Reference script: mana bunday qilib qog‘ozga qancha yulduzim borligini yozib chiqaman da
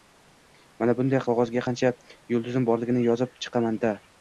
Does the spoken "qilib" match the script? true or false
false